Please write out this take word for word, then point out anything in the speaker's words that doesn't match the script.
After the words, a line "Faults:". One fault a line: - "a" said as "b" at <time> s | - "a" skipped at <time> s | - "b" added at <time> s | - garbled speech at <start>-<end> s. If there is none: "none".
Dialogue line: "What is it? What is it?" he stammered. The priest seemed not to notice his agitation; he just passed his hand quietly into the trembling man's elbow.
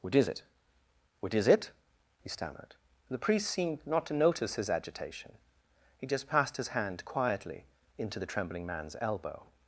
"What is it? What is it?" he stammered. The priest seemed not to notice his agitation; he just passed his hand quietly into the trembling man's elbow.
Faults:
none